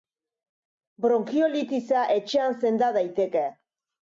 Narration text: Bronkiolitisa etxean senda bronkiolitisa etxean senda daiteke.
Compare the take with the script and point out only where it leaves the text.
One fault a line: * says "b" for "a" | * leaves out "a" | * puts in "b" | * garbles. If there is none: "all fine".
* leaves out "bronkiolitisa etxean senda"